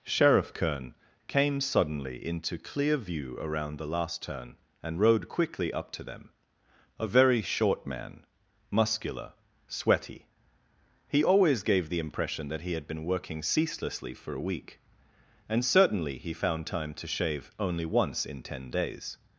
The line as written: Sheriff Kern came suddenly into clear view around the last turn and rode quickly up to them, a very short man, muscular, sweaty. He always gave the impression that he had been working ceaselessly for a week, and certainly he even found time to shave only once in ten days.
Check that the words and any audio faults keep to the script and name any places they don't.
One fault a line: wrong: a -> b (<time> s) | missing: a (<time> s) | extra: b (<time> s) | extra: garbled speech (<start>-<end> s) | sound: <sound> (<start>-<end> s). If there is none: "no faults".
missing: even (16.3 s)